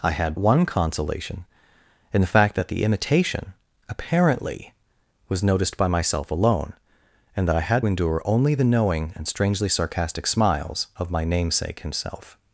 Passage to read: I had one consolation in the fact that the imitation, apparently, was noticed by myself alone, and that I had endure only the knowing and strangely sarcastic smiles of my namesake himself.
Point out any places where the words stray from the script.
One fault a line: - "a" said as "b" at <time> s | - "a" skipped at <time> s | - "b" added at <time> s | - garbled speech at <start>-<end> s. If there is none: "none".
none